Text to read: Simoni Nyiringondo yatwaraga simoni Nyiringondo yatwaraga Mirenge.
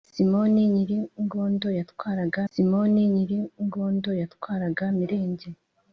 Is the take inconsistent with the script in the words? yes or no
no